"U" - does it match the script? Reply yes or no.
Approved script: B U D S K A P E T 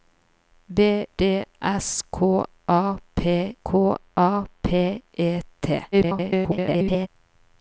no